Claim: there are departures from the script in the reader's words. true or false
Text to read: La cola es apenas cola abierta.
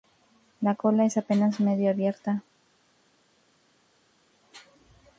true